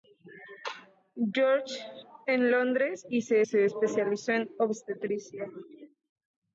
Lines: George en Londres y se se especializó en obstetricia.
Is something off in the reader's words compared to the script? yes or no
no